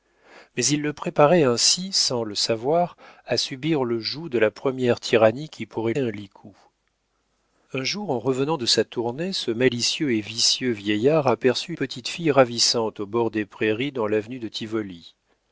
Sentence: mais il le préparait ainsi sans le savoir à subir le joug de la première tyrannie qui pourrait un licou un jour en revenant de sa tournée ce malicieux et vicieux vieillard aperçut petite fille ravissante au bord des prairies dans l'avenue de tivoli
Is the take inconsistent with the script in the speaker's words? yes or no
no